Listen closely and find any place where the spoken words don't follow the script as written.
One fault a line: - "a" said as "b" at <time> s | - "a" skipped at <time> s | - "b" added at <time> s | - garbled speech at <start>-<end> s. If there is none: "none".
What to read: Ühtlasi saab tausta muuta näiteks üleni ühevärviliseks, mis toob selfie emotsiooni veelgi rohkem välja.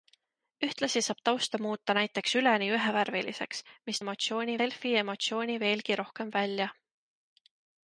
- "toob" said as "emotsiooni" at 4.0 s